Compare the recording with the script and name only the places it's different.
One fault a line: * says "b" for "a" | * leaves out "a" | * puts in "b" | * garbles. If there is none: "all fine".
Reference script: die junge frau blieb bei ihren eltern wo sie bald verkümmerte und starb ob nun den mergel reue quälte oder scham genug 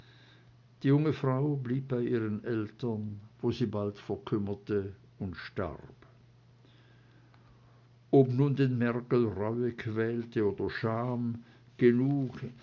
all fine